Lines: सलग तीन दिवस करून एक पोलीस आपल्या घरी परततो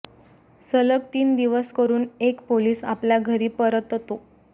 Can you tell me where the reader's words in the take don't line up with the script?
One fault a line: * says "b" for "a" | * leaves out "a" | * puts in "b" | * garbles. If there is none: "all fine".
all fine